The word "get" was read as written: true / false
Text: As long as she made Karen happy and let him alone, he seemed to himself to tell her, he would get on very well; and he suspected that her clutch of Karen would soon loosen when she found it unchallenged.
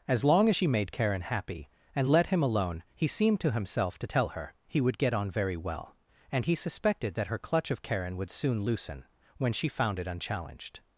true